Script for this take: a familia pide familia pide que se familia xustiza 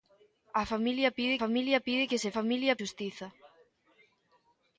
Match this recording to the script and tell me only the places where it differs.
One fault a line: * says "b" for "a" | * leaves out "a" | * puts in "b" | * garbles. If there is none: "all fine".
all fine